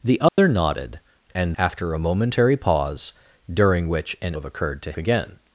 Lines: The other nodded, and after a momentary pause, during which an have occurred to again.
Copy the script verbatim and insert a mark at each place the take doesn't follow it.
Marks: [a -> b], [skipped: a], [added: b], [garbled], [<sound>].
The other [dropout] nodded, and after a momentary pause, during which an have occurred to again.